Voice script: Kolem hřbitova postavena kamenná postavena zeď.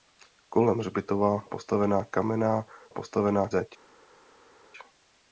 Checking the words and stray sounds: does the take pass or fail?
pass